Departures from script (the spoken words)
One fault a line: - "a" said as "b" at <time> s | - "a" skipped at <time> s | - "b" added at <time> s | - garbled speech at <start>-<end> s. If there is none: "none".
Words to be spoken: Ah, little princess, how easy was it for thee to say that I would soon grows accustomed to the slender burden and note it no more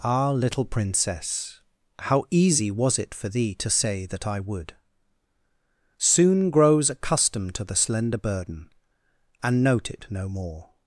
none